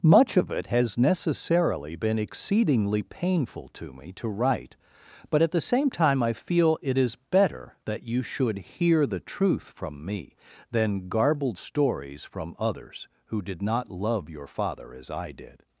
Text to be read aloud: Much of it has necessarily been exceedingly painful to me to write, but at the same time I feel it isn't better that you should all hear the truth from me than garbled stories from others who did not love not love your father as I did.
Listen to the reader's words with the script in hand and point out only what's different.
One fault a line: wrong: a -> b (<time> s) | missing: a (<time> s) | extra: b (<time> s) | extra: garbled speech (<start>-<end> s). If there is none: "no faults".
wrong: isn't -> is (7.0 s)
missing: all (8.6 s)
missing: not love (14.3 s)